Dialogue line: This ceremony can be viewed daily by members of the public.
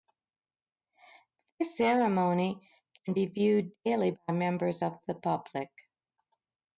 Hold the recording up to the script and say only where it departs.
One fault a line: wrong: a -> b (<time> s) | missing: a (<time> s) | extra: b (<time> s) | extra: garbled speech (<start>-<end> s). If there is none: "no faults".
no faults